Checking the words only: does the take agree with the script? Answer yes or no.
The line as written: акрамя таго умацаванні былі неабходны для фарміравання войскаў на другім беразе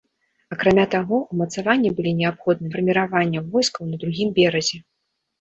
no